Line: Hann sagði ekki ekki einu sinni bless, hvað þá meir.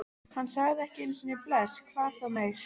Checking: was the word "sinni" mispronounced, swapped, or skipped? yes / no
no